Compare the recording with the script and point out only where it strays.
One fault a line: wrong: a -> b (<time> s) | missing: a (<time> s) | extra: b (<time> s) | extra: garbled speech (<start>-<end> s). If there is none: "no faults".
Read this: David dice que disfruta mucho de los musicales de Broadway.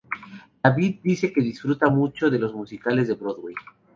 no faults